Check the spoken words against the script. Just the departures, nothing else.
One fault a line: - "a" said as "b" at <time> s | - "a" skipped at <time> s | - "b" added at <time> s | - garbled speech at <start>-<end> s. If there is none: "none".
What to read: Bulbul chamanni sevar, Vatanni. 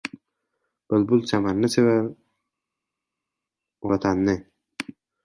none